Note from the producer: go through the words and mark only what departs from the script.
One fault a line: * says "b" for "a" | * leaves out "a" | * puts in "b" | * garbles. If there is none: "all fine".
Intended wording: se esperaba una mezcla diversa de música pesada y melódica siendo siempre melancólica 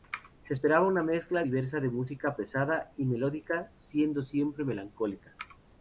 all fine